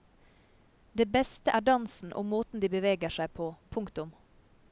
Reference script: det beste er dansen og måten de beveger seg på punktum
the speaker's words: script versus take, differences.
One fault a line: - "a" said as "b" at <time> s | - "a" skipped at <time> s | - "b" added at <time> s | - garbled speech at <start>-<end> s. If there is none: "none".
none